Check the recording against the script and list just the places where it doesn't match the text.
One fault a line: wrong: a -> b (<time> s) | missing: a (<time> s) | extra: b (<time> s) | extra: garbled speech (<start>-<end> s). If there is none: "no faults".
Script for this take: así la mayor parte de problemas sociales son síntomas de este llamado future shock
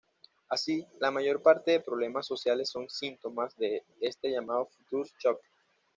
no faults